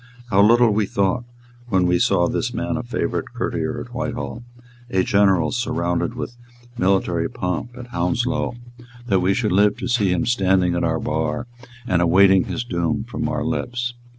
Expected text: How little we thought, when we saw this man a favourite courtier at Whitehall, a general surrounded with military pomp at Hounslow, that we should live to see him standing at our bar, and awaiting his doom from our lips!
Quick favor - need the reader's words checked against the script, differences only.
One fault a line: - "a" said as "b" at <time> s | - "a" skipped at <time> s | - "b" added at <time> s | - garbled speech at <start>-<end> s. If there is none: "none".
none